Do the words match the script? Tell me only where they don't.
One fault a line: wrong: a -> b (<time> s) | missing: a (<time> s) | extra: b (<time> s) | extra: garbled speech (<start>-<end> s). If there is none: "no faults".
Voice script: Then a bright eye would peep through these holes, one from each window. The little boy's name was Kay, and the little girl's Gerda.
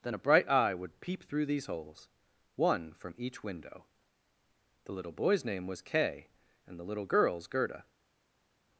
no faults